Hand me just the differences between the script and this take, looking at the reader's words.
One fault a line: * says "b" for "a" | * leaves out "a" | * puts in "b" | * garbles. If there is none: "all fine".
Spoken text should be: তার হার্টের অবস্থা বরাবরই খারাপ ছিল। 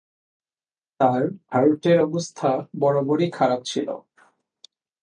all fine